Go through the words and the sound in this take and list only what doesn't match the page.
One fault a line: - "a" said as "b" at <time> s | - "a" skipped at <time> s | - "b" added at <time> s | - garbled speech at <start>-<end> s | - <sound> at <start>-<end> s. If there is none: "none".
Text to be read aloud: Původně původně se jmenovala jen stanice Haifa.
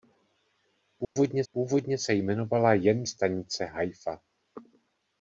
- dropout at 1.0-1.2 s